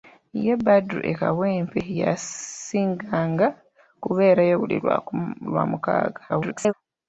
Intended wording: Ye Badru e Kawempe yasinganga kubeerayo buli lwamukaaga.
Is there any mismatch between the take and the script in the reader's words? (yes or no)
yes